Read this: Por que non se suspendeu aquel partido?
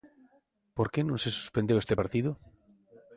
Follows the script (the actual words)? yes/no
no